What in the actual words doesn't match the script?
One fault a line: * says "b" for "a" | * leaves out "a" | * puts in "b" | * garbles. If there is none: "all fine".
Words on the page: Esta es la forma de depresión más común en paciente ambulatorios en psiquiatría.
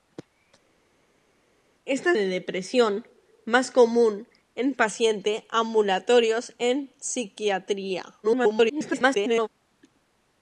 * leaves out "es la forma"
* garbles